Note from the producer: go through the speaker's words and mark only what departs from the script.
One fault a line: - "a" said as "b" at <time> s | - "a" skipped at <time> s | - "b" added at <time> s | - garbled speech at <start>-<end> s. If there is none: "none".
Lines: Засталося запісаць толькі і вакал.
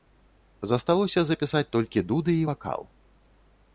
- "дуды" added at 2.1 s